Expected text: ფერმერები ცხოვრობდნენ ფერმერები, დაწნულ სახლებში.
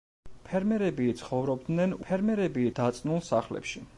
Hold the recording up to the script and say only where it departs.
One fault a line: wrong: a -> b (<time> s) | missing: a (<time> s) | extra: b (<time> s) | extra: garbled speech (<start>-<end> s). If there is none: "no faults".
no faults